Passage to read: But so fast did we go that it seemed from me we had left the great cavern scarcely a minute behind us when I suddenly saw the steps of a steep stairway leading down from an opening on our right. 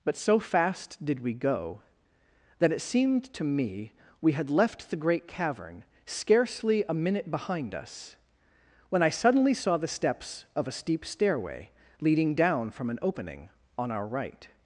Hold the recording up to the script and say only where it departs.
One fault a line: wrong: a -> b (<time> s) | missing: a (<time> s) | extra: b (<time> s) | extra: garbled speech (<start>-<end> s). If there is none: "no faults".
wrong: from -> to (3.3 s)